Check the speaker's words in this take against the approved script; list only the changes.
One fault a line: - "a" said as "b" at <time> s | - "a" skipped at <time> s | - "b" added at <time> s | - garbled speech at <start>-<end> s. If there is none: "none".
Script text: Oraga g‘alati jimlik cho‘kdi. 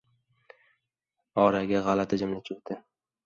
none